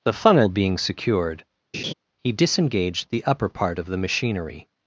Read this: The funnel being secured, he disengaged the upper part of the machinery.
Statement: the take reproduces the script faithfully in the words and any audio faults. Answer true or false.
false